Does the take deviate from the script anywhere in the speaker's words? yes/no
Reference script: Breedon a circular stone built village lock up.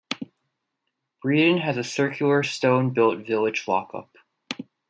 yes